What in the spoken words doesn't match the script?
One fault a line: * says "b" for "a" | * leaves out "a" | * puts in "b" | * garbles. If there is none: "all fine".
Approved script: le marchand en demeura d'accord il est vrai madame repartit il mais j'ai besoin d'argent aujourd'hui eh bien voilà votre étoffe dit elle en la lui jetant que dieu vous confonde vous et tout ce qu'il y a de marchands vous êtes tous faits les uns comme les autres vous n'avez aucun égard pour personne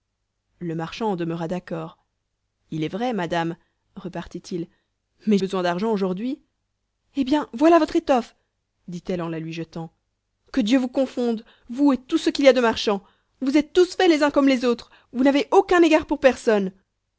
* leaves out "j'ai"